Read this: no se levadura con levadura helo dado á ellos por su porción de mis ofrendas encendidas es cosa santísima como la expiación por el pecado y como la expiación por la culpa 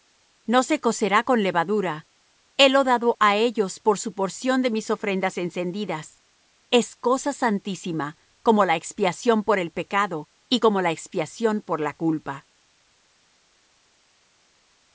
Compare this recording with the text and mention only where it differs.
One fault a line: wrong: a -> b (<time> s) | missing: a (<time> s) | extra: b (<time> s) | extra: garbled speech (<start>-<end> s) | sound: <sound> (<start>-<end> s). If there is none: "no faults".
wrong: levadura -> cocerá (0.8 s)